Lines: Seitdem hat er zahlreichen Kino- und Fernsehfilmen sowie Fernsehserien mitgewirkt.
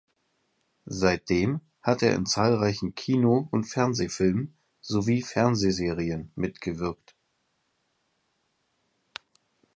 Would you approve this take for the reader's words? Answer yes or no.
no